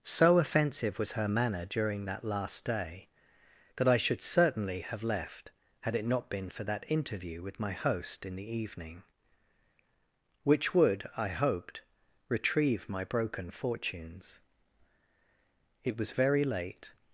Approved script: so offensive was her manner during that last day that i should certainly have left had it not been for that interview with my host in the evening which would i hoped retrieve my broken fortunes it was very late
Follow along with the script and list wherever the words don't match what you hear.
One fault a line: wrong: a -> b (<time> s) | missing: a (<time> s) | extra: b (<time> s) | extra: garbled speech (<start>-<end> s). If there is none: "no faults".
no faults